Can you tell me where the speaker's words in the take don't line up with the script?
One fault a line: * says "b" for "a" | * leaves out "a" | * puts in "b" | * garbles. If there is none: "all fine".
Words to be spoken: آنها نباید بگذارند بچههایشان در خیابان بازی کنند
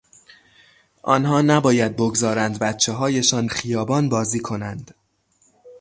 * leaves out "در"